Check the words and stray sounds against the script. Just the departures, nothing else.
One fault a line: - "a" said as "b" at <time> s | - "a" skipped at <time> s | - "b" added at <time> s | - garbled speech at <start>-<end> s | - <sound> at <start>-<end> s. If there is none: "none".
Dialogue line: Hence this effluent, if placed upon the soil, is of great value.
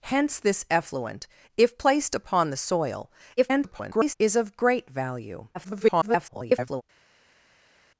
- garbled speech at 3.4-4.1 s
- garbled speech at 5.5-6.8 s